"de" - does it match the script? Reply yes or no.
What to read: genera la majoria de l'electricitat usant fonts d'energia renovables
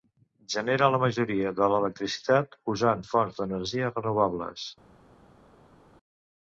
yes